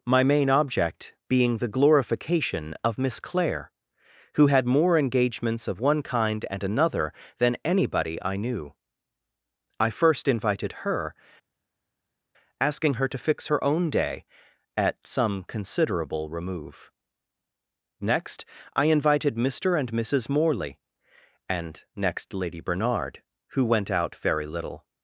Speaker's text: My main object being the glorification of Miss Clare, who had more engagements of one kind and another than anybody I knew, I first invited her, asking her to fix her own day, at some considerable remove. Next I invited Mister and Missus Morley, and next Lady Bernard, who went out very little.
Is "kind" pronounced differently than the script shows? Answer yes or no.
no